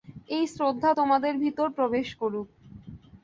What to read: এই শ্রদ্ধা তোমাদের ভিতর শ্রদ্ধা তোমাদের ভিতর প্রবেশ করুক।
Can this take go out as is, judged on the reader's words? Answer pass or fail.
fail